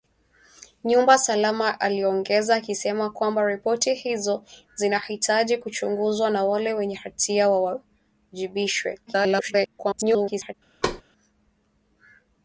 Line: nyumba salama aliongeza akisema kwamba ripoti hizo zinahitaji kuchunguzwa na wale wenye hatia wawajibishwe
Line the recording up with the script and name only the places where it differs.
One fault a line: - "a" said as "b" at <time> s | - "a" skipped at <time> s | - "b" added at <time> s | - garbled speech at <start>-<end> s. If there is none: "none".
- garbled speech at 9.1-10.5 s